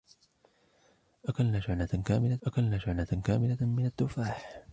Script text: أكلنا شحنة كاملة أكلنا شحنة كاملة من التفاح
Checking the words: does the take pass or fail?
pass